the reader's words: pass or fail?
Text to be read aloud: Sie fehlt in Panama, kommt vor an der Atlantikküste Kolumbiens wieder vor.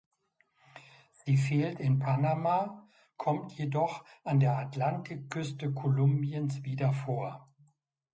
fail